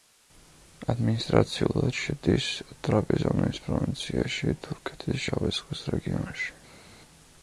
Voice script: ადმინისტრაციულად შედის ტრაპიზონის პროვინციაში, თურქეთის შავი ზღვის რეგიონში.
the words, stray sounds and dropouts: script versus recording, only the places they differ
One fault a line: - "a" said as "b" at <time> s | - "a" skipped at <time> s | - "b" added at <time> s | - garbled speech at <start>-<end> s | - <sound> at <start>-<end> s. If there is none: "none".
none